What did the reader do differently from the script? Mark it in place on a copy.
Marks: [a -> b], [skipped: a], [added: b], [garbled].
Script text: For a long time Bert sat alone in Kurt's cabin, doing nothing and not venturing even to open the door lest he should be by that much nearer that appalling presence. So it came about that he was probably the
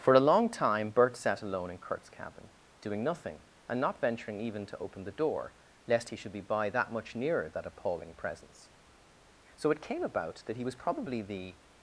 For a long time Bert sat alone in Kurt's cabin, doing nothing and not venturing even to open the door lest he should be by that much nearer that appalling presence. So it came about that he was probably the